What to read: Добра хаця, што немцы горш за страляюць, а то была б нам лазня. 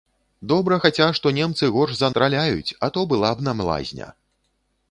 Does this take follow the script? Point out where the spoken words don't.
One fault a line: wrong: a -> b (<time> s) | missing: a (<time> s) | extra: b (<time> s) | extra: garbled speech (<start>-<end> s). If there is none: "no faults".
no faults